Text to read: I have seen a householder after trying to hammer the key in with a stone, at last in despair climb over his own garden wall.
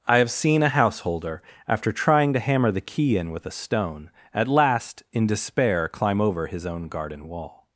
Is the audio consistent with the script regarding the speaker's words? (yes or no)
yes